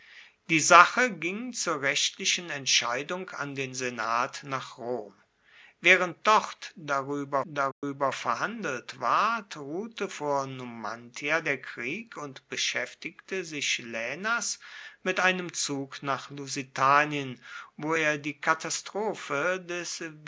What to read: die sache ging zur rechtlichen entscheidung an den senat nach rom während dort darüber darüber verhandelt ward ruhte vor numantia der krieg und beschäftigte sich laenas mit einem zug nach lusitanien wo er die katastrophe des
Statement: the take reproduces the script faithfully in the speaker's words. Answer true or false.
true